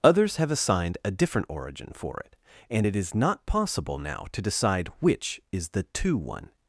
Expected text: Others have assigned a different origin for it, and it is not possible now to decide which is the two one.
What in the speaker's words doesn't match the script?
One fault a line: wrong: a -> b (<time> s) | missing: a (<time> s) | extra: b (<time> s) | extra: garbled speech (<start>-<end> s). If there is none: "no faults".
no faults